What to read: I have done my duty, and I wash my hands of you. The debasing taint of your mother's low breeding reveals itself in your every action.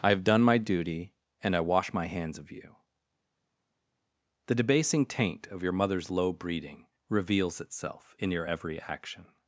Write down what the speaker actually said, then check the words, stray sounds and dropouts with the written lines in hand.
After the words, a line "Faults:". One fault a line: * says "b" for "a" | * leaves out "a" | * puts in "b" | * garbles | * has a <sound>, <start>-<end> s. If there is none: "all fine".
I have done my duty, and I wash my hands of you. The debasing taint of your mother's low breeding reveals itself in your every action.
Faults:
all fine